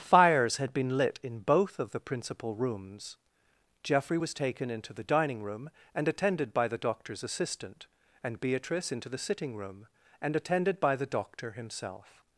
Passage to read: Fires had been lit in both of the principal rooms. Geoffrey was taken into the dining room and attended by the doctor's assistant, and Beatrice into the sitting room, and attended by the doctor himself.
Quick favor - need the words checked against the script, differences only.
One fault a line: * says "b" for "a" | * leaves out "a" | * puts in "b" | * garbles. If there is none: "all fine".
all fine